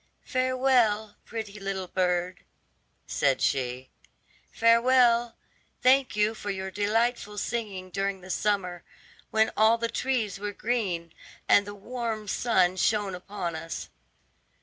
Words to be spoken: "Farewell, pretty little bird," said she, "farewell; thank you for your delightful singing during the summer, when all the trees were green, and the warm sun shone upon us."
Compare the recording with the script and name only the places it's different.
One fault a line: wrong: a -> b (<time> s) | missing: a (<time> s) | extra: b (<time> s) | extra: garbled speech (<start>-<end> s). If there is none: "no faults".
no faults